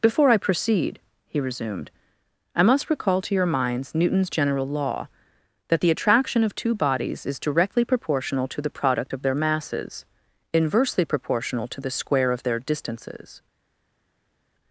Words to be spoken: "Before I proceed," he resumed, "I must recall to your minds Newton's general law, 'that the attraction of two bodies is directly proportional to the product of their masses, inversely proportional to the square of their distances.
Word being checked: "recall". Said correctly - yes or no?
yes